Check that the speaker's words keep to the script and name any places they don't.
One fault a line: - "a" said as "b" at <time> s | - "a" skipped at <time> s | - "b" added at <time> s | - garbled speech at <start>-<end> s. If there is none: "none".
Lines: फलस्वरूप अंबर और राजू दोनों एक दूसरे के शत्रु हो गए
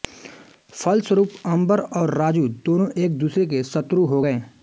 none